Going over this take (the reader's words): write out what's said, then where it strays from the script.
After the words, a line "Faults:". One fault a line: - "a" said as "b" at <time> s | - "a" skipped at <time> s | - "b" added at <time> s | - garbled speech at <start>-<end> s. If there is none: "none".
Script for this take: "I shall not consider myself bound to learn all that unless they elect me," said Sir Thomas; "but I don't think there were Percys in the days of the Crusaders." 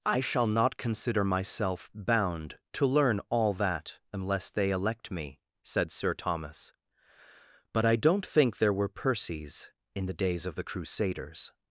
"I shall not consider myself bound to learn all that unless they elect me," said Sir Thomas; "but I don't think there were Percys in the days of the Crusaders."
Faults:
none